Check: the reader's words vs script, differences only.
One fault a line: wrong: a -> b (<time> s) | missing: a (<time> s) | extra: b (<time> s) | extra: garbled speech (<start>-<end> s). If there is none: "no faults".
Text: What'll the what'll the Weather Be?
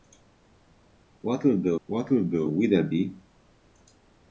no faults